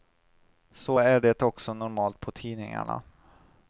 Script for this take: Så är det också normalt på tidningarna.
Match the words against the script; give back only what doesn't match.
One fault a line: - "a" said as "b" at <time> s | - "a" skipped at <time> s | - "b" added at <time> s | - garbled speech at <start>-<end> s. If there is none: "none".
none